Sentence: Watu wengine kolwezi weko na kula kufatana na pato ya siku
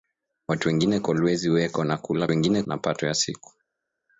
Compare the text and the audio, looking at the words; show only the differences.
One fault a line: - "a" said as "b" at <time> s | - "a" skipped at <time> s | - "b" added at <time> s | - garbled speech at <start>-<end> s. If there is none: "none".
- "kufatana" said as "wengine" at 2.3 s